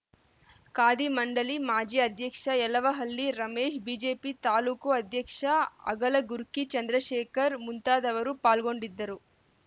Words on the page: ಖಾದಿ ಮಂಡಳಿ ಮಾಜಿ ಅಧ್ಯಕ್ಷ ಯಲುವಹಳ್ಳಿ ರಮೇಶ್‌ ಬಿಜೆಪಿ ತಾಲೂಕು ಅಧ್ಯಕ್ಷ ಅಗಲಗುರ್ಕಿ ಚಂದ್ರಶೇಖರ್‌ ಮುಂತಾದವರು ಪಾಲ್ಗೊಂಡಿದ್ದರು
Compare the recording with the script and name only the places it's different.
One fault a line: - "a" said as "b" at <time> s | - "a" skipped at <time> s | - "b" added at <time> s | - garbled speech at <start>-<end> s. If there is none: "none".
none